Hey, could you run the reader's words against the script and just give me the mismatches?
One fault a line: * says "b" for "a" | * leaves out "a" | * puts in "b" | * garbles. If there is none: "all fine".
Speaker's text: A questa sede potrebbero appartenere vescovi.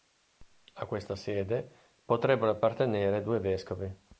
* puts in "due"